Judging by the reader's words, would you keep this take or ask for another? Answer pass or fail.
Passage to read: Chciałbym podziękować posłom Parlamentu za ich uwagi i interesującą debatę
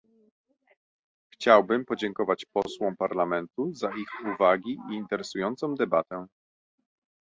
pass